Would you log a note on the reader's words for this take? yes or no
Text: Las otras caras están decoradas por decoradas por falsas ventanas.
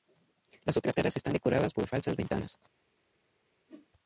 yes